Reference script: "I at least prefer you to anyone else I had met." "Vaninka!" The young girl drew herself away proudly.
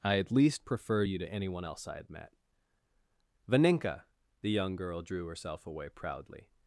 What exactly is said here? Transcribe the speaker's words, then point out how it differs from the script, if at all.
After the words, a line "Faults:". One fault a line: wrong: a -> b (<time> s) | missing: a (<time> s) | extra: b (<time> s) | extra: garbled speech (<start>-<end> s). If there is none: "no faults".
"I at least prefer you to anyone else I had met." "Vaninka!" The young girl drew herself away proudly.
Faults:
no faults